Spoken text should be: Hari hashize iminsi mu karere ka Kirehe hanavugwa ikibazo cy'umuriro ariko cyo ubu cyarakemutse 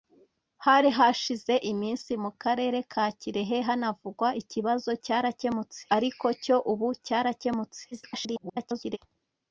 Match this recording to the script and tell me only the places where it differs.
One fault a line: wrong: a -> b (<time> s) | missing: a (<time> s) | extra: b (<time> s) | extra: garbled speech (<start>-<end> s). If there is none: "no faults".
wrong: cy'umuriro -> cyarakemutse (5.0 s)
extra: garbled speech (7.9-9.0 s)